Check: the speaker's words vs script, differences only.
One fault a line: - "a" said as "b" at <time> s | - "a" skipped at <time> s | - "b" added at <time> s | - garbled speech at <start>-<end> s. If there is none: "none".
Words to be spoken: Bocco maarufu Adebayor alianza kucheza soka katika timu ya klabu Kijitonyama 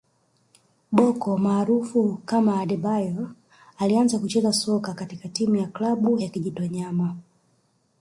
- "kama" added at 2.2 s
- "ya" added at 6.2 s